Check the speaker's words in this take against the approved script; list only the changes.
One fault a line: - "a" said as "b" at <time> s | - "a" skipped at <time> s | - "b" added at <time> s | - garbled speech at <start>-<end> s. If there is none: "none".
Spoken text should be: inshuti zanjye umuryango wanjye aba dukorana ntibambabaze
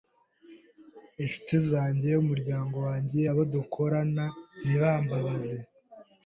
- "aba" said as "abo" at 3.3 s